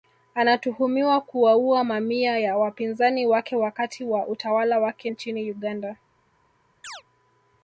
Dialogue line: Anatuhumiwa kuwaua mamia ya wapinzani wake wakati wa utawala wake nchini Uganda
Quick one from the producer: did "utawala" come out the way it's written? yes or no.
yes